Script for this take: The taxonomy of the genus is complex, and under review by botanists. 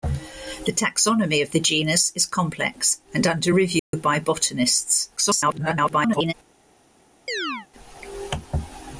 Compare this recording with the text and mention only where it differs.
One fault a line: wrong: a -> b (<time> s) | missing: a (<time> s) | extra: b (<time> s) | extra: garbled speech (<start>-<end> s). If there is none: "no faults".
extra: garbled speech (5.2-6.3 s)